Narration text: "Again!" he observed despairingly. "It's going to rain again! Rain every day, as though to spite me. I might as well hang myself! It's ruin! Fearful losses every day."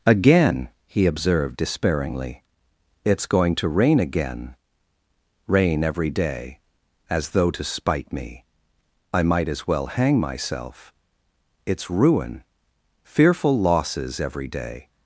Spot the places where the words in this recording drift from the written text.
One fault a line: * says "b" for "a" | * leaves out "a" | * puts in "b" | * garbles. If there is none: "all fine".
all fine